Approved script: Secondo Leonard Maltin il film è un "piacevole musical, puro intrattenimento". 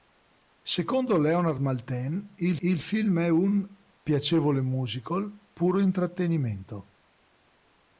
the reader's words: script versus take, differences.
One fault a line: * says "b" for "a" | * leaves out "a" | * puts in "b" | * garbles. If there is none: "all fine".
* puts in "il"